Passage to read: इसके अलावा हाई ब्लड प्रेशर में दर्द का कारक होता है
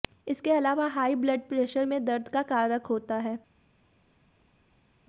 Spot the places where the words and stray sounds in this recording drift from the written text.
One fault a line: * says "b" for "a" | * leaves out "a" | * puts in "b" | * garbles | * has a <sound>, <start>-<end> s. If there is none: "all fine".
all fine